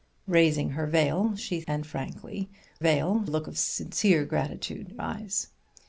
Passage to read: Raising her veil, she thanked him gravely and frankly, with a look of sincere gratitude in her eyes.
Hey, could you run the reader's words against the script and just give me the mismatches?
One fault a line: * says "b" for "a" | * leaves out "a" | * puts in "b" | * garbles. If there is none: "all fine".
* leaves out "thanked him gravely"
* says "veil" for "with"
* leaves out "in her"